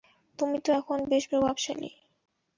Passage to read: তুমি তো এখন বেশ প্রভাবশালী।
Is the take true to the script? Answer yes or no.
yes